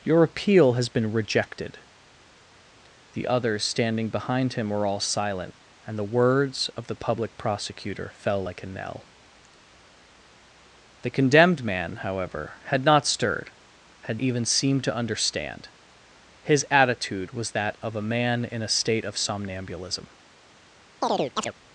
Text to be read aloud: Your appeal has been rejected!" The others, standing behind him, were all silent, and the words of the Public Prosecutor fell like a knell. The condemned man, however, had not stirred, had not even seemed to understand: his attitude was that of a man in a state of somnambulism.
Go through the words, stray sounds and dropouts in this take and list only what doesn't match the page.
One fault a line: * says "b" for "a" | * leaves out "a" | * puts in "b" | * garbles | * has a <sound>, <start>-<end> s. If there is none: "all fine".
* leaves out "not"
* has a chirp, 21.0-21.5 s